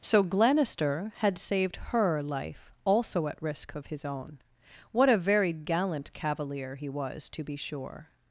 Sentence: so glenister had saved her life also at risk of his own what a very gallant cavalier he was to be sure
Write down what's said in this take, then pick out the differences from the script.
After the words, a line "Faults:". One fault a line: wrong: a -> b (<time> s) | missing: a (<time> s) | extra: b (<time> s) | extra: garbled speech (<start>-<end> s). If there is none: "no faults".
so glenister had saved her life also at risk of his own what a very gallant cavalier he was to be sure
Faults:
no faults